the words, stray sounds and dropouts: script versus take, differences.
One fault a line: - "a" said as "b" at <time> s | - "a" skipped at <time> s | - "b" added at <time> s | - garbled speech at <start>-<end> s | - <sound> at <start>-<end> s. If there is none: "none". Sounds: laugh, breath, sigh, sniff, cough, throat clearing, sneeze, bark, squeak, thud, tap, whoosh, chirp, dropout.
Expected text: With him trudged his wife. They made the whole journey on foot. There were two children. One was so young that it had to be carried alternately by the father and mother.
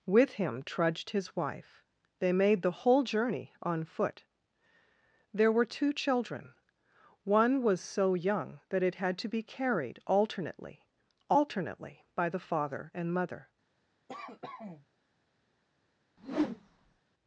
- "alternately" added at 11.3 s
- cough at 14.1-14.9 s
- whoosh at 16.2-17.0 s